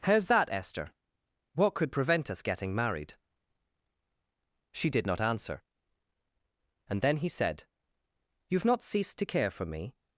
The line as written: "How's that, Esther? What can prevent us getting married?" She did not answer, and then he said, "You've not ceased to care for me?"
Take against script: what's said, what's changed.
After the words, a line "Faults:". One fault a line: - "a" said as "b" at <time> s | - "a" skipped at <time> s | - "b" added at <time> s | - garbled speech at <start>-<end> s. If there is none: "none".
"How's that, Esther? What could prevent us getting married?" She did not answer, and then he said, "You've not ceased to care for me?"
Faults:
- "can" said as "could" at 1.8 s